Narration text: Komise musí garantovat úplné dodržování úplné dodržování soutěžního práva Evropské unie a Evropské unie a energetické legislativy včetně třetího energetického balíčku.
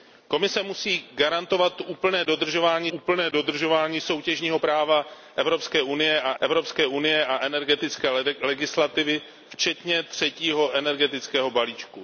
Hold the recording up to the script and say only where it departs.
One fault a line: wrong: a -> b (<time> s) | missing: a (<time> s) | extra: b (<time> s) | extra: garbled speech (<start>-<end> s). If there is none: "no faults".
no faults